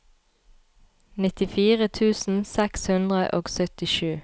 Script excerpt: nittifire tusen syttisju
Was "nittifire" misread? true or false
false